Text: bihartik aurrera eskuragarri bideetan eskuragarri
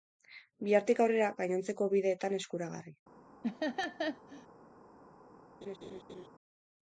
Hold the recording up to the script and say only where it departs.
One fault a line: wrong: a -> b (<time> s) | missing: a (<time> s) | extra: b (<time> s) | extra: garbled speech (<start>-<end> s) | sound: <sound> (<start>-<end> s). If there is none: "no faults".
wrong: eskuragarri -> gainontzeko (1.4 s)
sound: laugh (3.4-4.5 s)
sound: laugh (5.6-6.3 s)